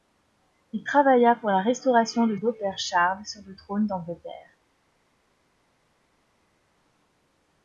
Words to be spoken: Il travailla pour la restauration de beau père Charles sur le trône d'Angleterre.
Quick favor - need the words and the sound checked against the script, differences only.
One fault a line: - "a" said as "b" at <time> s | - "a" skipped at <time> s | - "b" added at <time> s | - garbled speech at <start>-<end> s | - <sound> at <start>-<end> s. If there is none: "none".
none